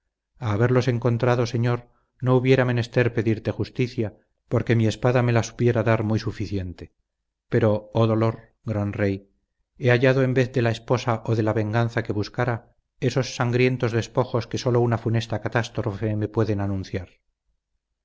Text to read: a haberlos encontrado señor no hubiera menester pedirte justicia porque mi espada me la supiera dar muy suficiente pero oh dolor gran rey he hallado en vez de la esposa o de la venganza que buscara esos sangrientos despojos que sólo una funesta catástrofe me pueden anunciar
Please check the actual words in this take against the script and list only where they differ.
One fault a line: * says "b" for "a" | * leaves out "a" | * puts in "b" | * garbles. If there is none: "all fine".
all fine